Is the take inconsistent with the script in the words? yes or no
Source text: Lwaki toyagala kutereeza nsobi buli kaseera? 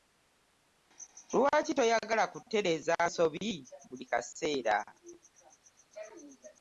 no